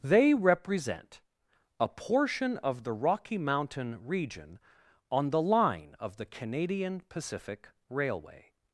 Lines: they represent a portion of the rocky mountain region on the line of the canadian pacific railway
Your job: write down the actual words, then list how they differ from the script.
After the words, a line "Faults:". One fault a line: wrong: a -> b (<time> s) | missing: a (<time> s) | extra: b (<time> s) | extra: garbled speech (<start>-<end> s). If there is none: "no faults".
they represent a portion of the rocky mountain region on the line of the canadian pacific railway
Faults:
no faults